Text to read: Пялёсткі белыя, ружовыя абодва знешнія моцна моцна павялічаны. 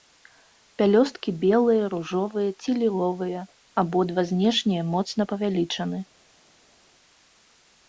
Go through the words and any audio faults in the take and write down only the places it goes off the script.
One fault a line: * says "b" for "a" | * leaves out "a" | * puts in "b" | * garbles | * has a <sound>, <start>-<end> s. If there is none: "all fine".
* puts in "ці ліловыя"
* leaves out "моцна"